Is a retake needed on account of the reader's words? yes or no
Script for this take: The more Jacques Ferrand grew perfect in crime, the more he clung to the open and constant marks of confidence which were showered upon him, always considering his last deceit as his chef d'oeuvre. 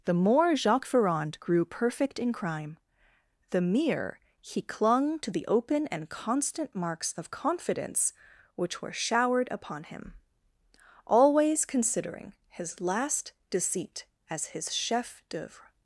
yes